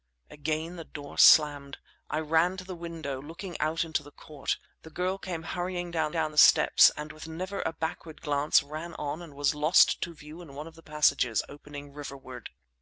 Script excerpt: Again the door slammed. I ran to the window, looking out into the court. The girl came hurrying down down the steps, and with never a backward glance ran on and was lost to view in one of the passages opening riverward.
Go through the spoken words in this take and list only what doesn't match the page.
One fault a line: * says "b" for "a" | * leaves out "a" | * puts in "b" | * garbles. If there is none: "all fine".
all fine